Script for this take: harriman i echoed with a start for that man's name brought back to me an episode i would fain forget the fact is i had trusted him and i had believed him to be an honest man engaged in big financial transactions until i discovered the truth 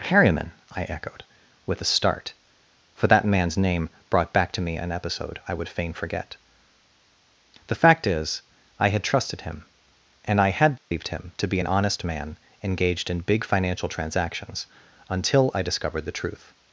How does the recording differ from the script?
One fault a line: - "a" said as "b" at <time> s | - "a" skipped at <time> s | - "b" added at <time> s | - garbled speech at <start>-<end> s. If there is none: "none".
none